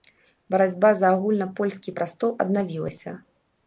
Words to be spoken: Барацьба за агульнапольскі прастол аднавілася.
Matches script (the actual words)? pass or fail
pass